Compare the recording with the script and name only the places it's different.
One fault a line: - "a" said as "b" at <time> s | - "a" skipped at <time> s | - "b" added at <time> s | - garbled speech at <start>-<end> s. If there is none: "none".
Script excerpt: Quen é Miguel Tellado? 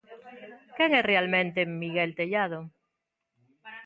- "realmente" added at 1.1 s